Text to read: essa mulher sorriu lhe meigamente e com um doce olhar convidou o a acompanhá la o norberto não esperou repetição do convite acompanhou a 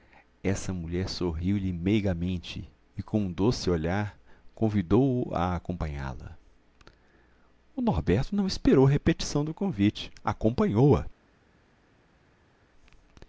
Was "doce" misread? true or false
false